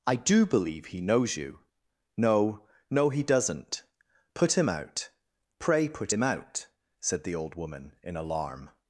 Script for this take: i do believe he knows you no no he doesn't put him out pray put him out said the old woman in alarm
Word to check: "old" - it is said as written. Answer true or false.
true